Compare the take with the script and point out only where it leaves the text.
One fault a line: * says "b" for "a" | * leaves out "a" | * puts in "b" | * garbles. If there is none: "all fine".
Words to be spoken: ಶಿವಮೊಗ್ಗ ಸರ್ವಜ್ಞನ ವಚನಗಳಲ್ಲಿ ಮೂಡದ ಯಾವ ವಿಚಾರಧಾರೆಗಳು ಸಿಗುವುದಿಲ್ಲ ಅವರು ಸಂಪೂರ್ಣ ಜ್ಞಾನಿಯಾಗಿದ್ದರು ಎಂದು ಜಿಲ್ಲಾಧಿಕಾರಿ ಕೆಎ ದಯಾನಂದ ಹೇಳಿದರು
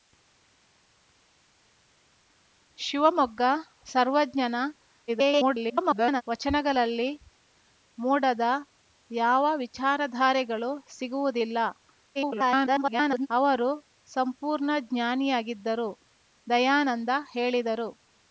* garbles
* garbles
* leaves out "ಎಂದು ಜಿಲ್ಲಾಧಿಕಾರಿ ಕೆಎ"